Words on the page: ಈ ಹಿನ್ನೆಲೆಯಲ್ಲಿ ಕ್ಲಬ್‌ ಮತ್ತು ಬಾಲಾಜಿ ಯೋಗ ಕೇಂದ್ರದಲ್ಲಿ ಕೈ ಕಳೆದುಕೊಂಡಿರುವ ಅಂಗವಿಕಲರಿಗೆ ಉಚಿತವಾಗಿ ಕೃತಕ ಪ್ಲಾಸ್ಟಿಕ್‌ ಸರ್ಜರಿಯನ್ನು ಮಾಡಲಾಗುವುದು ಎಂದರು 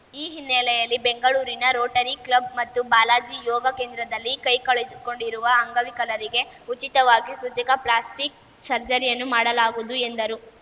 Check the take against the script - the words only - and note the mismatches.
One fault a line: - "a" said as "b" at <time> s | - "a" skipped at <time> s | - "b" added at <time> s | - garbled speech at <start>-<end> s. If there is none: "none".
- "ಬೆಂಗಳೂರಿನ ರೋಟರಿ" added at 1.0 s